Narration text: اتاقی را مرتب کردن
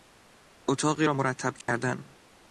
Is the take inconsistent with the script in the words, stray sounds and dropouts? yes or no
yes